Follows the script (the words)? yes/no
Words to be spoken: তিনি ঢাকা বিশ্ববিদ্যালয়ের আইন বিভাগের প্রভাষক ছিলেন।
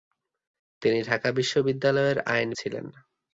no